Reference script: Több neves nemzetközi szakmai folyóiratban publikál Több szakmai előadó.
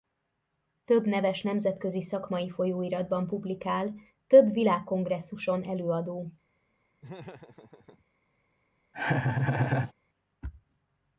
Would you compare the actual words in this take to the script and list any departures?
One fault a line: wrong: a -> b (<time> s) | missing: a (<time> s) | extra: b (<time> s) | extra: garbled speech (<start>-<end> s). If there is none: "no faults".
wrong: szakmai -> világkongresszuson (4.5 s)